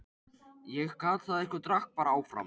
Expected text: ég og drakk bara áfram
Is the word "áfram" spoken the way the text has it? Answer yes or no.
yes